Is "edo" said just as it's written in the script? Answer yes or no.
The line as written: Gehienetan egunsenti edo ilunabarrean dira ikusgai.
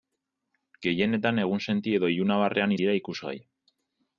yes